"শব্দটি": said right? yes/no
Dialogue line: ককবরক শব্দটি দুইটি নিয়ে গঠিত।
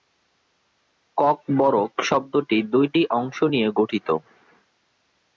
yes